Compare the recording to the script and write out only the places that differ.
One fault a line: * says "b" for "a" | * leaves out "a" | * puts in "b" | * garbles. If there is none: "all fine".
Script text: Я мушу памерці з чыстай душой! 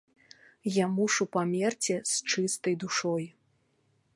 all fine